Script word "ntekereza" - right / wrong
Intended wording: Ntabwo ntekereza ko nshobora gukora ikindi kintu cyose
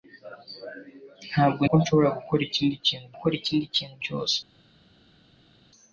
wrong